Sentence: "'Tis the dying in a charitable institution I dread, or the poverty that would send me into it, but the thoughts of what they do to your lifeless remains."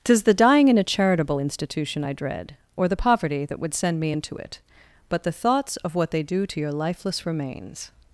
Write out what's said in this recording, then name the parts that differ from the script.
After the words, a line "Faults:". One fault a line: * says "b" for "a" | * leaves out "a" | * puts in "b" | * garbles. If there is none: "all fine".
"'Tis the dying in a charitable institution I dread, or the poverty that would send me into it, but the thoughts of what they do to your lifeless remains."
Faults:
all fine